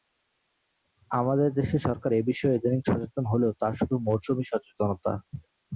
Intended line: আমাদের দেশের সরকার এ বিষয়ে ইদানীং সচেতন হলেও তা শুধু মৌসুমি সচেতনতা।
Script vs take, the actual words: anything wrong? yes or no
no